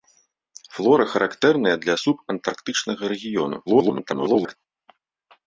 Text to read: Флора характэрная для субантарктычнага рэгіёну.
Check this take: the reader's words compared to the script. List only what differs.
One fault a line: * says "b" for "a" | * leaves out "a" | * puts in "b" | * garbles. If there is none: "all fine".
* garbles